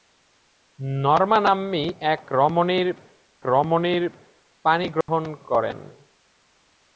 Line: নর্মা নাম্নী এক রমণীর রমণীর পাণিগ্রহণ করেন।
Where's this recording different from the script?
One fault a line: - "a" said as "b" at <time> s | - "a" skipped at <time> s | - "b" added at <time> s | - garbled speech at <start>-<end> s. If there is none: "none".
none